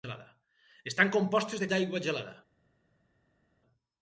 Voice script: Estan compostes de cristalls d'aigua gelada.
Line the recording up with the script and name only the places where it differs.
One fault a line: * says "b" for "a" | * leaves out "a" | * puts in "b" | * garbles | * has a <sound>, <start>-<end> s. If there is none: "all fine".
* leaves out "cristalls"